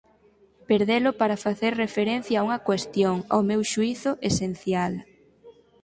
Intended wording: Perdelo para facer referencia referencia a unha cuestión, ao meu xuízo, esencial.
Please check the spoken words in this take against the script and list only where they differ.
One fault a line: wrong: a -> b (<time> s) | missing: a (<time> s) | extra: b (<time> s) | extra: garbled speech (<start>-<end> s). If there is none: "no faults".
missing: referencia (2.4 s)